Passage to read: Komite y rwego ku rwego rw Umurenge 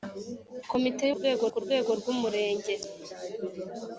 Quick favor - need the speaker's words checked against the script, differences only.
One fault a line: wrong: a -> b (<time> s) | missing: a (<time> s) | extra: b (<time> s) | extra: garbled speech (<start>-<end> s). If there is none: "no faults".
no faults